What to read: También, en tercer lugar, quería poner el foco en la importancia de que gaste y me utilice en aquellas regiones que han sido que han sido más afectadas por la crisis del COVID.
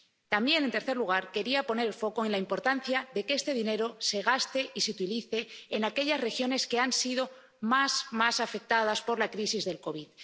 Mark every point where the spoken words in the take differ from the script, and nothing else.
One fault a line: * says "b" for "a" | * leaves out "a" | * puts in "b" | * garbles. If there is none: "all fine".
* puts in "este dinero se"
* says "se" for "me"
* leaves out "que han sido"